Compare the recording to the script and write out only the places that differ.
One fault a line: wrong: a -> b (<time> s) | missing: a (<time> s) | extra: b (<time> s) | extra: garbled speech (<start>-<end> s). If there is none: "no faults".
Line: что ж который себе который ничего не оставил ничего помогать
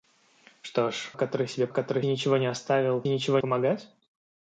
no faults